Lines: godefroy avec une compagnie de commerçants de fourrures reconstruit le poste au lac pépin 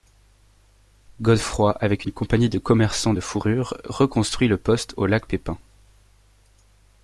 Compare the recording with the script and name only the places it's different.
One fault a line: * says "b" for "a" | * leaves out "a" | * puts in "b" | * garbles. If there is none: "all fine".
all fine